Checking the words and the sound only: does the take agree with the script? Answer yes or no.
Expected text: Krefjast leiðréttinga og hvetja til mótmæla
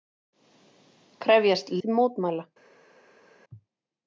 no